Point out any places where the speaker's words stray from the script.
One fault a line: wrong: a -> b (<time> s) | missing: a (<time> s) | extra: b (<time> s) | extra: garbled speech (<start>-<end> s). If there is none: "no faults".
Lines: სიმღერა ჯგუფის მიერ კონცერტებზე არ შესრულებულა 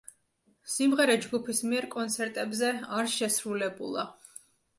no faults